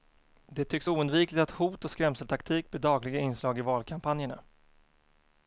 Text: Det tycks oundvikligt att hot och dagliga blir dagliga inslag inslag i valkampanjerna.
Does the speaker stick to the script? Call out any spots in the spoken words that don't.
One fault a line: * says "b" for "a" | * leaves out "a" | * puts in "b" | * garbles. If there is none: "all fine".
* says "skrämseltaktik" for "dagliga"
* leaves out "inslag"